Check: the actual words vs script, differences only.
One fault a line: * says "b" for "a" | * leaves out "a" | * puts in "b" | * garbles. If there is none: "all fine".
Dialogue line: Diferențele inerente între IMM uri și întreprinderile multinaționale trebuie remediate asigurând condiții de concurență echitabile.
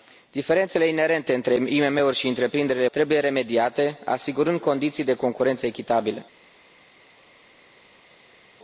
* leaves out "multinaționale"